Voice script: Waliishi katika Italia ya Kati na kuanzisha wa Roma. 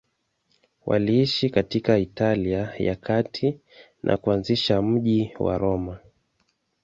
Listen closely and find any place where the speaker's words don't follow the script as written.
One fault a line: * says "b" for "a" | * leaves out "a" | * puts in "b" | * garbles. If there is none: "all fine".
* puts in "mji"